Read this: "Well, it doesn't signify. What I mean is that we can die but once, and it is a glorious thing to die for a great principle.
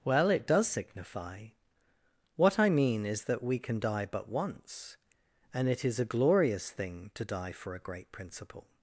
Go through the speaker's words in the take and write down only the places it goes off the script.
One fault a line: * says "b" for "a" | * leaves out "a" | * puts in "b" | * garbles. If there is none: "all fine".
* says "does" for "doesn't"